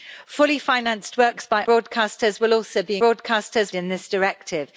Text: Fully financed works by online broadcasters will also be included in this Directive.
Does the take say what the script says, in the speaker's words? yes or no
no